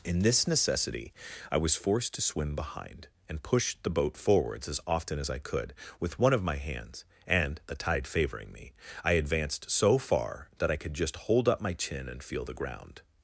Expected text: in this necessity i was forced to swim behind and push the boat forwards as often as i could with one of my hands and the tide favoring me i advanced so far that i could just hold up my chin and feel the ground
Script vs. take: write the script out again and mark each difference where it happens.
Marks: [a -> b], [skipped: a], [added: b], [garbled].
in this necessity i was forced to swim behind and push the boat forwards as often as i could with one of my hands and the tide favoring me i advanced so far that i could just hold up my chin and feel the ground